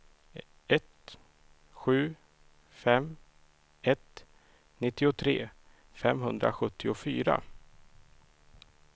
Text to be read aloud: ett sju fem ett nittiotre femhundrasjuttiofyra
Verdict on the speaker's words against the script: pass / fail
pass